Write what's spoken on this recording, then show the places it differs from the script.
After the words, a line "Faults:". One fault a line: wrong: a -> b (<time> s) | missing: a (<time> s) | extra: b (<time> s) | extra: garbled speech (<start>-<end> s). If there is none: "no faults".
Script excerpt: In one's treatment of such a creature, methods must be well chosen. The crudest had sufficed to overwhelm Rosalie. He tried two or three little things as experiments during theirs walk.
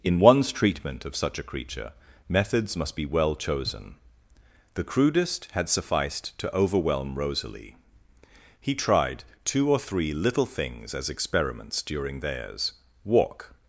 In one's treatment of such a creature, methods must be well chosen. The crudest had sufficed to overwhelm Rosalie. He tried two or three little things as experiments during theirs walk.
Faults:
no faults